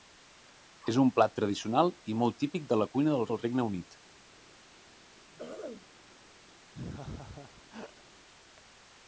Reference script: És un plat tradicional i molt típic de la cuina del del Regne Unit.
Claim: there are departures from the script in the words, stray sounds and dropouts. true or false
true